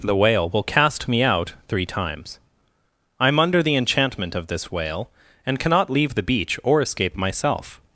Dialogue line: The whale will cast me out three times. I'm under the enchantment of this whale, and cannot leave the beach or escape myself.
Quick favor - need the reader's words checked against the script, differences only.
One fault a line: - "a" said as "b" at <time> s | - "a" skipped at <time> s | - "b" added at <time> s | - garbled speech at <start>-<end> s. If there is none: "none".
none